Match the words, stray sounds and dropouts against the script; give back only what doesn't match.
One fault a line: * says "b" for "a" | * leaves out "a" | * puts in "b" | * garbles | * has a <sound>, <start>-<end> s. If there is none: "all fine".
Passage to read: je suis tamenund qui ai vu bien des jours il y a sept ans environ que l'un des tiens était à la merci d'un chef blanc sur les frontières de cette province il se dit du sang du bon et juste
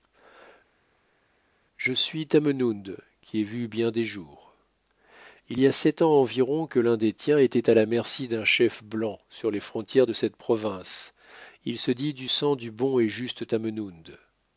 all fine